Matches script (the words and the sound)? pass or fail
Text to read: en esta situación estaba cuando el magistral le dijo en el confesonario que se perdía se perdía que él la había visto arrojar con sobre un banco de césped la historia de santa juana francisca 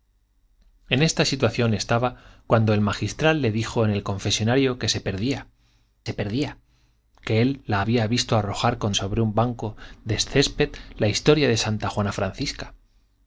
pass